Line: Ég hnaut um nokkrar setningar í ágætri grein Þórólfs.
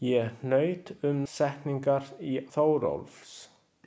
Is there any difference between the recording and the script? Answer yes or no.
yes